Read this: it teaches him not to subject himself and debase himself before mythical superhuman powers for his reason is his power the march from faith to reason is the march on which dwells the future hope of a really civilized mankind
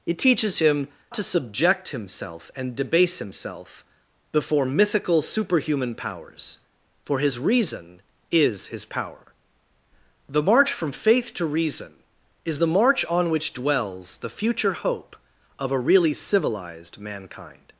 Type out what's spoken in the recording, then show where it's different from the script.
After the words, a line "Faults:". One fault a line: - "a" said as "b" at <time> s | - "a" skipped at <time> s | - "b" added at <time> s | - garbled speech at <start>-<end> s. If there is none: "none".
it teaches him to subject himself and debase himself before mythical superhuman powers for his reason is his power the march from faith to reason is the march on which dwells the future hope of a really civilized mankind
Faults:
- "not" skipped at 0.9 s